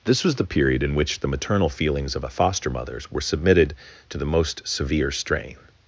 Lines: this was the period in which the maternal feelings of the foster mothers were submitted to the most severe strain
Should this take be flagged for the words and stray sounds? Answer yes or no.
no